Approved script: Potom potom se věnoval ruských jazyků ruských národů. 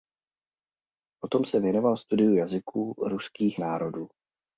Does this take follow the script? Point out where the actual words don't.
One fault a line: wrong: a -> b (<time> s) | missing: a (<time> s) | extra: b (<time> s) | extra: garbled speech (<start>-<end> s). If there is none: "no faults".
missing: potom (1.4 s)
wrong: ruských -> studiu (2.0 s)